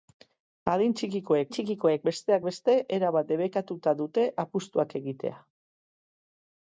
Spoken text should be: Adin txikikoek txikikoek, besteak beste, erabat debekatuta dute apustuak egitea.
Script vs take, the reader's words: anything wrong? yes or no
no